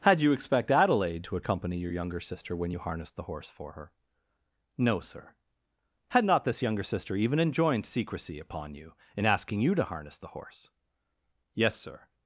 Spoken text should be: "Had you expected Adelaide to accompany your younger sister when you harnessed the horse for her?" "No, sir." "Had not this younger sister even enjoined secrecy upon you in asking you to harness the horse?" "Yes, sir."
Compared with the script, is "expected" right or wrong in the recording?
wrong